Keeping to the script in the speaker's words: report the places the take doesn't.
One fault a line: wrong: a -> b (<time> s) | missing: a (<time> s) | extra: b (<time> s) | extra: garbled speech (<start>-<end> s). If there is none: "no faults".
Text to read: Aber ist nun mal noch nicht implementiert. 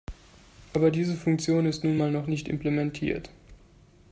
extra: diese Funktion (0.9 s)